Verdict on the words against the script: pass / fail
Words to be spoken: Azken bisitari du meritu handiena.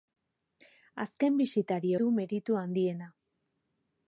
pass